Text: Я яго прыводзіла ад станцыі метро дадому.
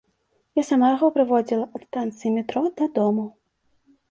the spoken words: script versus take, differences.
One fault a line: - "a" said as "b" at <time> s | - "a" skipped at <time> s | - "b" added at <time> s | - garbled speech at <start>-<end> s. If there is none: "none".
- "сама" added at 0.7 s